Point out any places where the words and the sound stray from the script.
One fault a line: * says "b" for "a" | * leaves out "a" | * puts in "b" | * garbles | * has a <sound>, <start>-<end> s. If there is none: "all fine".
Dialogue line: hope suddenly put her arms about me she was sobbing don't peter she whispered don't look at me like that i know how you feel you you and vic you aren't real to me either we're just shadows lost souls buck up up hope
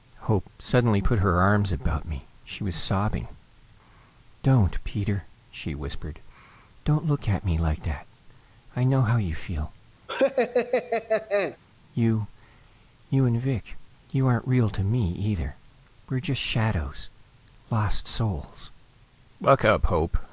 * has a laugh, 10.1-11.6 s
* leaves out "up"